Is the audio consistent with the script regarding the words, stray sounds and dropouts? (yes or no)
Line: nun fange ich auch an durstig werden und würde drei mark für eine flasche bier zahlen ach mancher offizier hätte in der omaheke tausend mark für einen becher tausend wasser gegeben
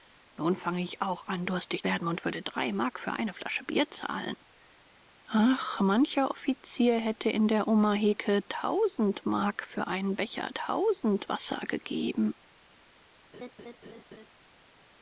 no